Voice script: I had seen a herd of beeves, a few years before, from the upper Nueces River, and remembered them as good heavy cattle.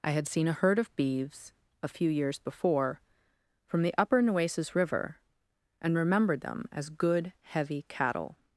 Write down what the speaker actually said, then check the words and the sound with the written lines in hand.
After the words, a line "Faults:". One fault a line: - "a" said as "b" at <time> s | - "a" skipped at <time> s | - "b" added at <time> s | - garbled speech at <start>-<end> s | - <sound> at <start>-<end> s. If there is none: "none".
I had seen a herd of beeves, a few years before, from the upper Nueces River, and remembered them as good heavy cattle.
Faults:
none